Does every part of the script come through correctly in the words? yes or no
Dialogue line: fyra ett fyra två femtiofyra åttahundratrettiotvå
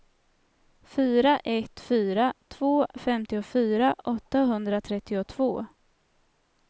yes